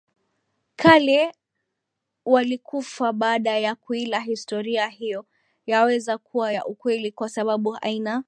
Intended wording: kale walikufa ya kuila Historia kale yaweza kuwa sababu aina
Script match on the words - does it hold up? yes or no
no